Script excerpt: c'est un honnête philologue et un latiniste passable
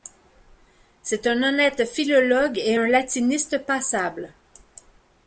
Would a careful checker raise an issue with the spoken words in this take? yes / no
no